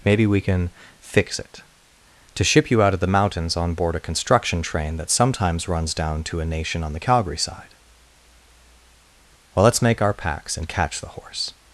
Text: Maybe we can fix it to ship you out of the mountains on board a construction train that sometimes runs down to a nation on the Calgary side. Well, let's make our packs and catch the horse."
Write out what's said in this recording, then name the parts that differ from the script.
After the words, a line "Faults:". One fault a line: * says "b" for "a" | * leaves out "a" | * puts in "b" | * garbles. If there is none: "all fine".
Maybe we can fix it to ship you out of the mountains on board a construction train that sometimes runs down to a nation on the Calgary side. Well, let's make our packs and catch the horse."
Faults:
all fine